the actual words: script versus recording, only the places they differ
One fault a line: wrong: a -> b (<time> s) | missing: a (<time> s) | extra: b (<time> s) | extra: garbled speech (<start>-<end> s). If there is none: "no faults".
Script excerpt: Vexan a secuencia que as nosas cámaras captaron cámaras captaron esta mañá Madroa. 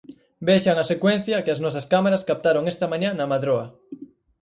missing: cámaras captaron (2.6 s)
extra: na (3.1 s)